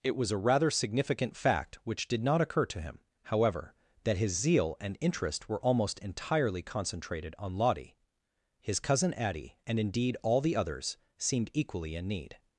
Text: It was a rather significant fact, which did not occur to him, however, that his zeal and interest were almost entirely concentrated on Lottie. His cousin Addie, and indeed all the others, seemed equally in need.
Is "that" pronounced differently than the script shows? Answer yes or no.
no